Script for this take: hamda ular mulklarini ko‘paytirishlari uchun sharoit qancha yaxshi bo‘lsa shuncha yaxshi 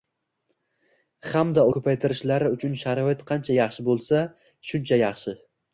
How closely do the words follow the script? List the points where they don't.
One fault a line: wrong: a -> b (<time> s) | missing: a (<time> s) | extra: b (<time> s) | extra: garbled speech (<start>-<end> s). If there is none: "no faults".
missing: ular mulklarini (1.6 s)